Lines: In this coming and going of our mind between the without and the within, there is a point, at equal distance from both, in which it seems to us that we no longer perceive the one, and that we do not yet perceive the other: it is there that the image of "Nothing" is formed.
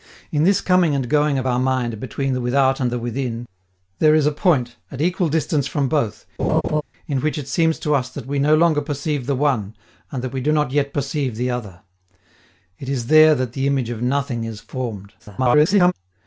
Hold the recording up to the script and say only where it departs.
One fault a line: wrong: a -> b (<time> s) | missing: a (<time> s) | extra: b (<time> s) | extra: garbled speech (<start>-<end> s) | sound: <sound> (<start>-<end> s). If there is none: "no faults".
sound: laugh (6.4-6.8 s)
extra: garbled speech (15.2-15.9 s)